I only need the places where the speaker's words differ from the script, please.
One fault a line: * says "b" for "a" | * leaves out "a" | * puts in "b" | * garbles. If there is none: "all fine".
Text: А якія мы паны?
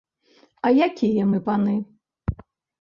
all fine